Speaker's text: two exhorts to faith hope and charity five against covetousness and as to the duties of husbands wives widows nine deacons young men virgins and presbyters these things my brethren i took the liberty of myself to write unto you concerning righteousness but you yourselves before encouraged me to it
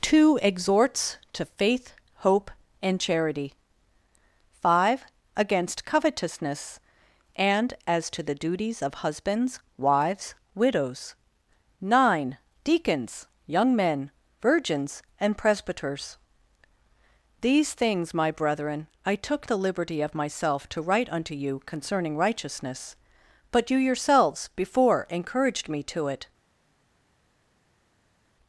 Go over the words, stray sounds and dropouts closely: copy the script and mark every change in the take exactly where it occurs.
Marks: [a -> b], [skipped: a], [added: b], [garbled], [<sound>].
two exhorts to faith hope and charity five against covetousness and as to the duties of husbands wives widows nine deacons young men virgins and presbyters these things my brethren i took the liberty of myself to write unto you concerning righteousness but you yourselves before encouraged me to it